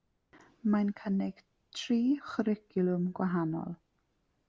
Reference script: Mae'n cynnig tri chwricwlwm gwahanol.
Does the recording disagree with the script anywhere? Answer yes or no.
no